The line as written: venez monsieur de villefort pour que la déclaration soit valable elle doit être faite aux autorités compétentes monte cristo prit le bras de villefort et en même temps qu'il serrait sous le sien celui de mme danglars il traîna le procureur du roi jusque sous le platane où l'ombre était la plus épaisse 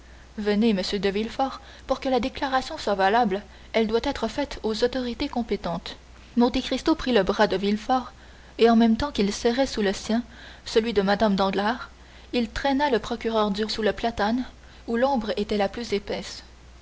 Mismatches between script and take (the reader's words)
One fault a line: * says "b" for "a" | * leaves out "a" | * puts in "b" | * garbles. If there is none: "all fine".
* leaves out "roi jusque"